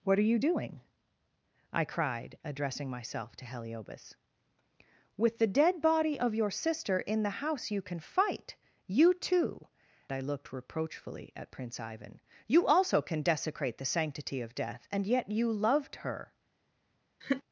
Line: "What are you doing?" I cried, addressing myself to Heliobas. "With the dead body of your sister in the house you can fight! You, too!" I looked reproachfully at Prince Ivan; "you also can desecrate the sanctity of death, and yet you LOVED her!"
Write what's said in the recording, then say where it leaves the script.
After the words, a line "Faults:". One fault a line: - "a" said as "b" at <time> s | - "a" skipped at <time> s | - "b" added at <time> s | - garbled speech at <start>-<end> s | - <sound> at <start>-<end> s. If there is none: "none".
"What are you doing?" I cried, addressing myself to Heliobas. "With the dead body of your sister in the house you can fight! You, too!" I looked reproachfully at Prince Ivan; "you also can desecrate the sanctity of death, and yet you LOVED her!"
Faults:
- laugh at 17.2-17.4 s